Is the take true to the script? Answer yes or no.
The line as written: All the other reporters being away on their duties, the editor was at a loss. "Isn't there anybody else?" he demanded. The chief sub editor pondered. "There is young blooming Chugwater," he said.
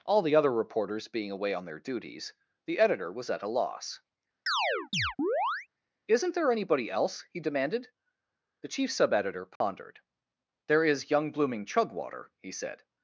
yes